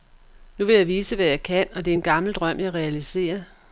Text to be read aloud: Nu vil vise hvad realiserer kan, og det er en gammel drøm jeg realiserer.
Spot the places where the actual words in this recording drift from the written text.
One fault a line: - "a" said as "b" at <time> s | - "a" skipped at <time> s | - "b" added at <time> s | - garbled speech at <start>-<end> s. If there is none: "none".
- "jeg" added at 0.8 s
- "realiserer" said as "jeg" at 1.2 s